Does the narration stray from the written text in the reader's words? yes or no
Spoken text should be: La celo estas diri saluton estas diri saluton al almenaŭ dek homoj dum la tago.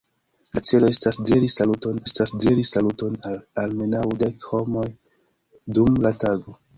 no